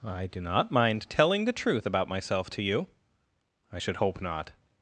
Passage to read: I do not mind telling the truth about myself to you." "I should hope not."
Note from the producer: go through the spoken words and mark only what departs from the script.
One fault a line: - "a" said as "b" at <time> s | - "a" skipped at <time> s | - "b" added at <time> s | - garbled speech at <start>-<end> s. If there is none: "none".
none